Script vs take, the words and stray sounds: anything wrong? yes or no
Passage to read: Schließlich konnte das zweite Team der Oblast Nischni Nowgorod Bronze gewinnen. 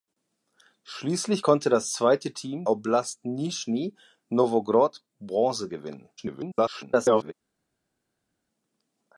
yes